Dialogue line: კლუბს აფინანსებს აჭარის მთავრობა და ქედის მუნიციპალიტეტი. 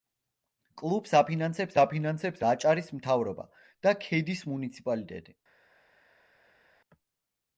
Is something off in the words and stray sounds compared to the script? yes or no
yes